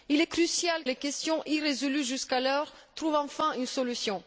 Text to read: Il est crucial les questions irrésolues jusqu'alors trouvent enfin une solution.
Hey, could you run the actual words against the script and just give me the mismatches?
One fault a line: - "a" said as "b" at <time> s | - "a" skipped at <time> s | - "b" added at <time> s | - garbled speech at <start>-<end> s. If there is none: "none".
none